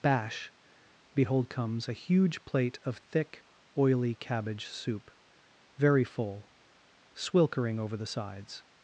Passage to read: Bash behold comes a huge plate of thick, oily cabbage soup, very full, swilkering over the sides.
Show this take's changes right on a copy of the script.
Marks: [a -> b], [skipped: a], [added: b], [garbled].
Bash behold comes a huge plate of thick, oily cabbage soup, very full, swilkering over the sides.